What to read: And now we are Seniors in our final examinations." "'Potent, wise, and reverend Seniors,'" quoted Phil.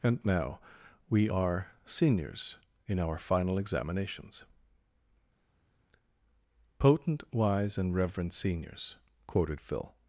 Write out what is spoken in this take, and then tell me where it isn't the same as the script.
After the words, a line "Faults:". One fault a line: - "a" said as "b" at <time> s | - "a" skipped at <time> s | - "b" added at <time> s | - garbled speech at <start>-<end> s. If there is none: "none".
And now we are Seniors in our final examinations." "'Potent, wise, and reverend Seniors,'" quoted Phil.
Faults:
none